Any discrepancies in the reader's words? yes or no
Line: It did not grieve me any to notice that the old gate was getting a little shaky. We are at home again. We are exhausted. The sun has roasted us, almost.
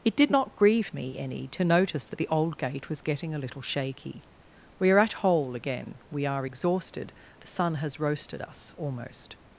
yes